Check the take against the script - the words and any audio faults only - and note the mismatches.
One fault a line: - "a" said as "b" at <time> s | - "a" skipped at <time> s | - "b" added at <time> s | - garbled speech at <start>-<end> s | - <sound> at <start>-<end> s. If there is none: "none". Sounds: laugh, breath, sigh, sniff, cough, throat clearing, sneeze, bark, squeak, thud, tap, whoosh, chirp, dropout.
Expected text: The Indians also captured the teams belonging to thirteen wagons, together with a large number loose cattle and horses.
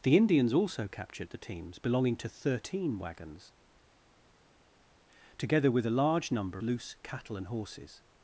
none